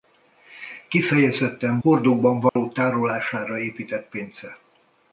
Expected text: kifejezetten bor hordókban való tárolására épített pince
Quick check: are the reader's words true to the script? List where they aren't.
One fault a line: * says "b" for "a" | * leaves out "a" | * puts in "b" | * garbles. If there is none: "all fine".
* leaves out "bor"